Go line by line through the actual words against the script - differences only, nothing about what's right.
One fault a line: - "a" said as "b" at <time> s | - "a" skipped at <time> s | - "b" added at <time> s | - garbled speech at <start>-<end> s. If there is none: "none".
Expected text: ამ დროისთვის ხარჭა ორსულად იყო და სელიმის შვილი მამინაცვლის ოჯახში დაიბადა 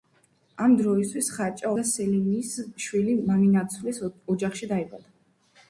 - "ორსულად იყო" skipped at 1.7 s